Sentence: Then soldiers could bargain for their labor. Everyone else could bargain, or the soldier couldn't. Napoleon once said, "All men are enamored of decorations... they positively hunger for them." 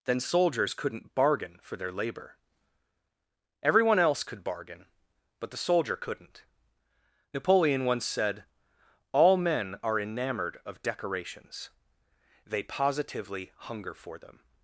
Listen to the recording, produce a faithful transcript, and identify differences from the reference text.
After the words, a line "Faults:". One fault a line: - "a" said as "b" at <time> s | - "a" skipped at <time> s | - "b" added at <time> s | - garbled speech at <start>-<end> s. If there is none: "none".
Then soldiers couldn't bargain for their labor. Everyone else could bargain, but the soldier couldn't. Napoleon once said, "All men are enamored of decorations... they positively hunger for them."
Faults:
- "could" said as "couldn't" at 0.7 s
- "or" said as "but" at 5.4 s